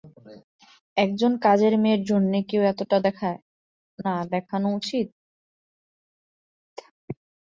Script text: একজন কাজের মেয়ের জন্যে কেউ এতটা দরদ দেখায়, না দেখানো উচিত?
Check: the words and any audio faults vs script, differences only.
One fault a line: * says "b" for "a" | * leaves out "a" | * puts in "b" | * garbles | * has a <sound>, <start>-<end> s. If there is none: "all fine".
* leaves out "দরদ"